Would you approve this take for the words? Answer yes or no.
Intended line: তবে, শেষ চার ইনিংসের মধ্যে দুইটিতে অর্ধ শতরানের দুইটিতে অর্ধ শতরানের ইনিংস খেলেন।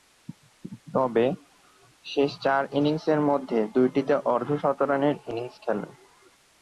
no